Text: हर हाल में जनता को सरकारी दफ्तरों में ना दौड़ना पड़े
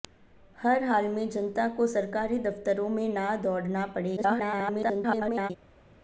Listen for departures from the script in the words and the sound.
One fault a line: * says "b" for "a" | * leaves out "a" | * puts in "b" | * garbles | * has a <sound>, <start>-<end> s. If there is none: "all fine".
* garbles